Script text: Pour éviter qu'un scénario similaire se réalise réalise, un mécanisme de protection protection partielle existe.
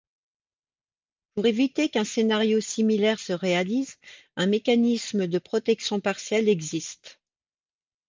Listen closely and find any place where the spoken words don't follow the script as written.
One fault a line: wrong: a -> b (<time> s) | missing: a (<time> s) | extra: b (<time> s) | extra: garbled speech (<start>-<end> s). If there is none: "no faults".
missing: réalise (4.0 s)
missing: protection (6.0 s)